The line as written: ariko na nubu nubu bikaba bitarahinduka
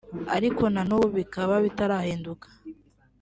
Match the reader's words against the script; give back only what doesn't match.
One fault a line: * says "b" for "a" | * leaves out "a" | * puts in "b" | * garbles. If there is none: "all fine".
* leaves out "nubu"